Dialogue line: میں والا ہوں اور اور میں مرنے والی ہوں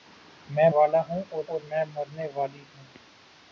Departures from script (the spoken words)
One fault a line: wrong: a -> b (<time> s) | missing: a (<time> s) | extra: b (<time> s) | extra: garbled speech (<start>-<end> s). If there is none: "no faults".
no faults